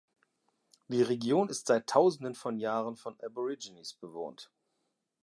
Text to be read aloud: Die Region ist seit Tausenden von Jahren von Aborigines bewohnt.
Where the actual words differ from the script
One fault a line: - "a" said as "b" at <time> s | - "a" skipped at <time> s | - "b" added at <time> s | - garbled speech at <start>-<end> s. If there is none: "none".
none